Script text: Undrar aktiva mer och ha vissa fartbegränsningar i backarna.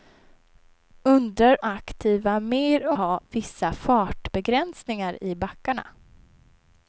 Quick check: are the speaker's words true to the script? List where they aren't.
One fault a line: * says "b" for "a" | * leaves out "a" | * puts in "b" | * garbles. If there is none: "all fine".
all fine